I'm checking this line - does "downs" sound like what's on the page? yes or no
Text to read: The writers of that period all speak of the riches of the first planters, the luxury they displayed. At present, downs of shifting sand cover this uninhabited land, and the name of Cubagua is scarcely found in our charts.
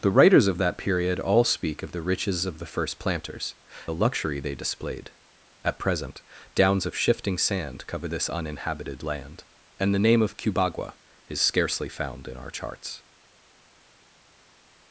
yes